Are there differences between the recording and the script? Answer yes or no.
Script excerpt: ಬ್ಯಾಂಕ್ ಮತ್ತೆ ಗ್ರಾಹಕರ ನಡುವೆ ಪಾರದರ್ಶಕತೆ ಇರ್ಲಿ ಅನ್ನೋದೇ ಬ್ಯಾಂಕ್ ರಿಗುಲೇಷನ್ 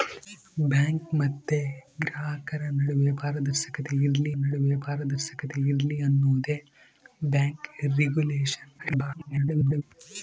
yes